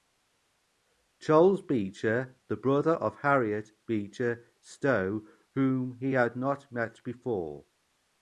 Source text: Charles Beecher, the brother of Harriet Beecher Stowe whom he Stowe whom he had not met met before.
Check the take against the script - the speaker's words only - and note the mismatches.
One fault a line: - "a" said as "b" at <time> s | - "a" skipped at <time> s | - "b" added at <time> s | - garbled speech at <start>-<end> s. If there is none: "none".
- "Stowe whom he" skipped at 6.1 s
- "met" skipped at 7.0 s